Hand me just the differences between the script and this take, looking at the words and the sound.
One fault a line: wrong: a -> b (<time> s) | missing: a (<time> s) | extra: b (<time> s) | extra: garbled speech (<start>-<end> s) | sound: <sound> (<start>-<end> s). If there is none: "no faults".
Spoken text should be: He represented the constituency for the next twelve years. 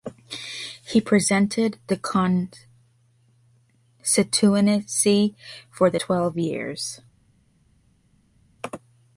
missing: next (6.0 s)